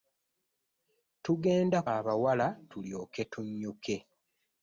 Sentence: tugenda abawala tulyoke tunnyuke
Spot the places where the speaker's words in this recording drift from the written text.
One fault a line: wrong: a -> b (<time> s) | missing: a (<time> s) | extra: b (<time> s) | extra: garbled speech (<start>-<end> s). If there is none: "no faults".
no faults